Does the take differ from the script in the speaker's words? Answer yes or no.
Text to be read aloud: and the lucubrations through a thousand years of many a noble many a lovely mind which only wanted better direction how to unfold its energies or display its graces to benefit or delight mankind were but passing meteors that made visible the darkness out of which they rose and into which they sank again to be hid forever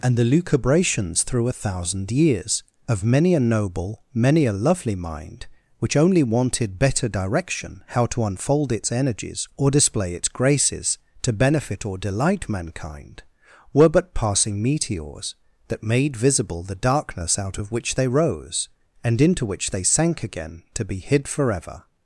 no